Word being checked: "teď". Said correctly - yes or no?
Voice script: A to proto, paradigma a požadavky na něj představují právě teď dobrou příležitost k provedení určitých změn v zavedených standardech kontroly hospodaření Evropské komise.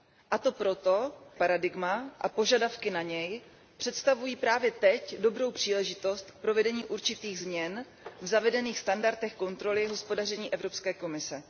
yes